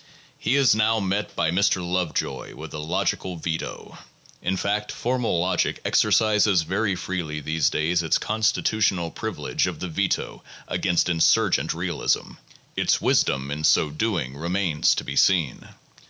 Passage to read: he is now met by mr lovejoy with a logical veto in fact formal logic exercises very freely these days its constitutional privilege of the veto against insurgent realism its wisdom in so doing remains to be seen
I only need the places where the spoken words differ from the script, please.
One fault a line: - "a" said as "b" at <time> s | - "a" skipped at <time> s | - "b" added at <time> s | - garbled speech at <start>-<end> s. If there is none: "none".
none